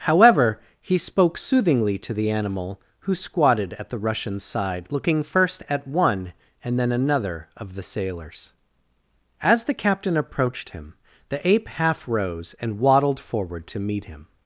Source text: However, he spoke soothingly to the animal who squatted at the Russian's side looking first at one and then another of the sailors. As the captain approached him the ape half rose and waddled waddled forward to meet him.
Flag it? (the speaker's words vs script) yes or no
yes